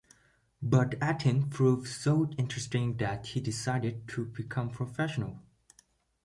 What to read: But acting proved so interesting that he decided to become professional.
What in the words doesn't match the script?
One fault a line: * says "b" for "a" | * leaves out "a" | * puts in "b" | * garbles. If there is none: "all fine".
all fine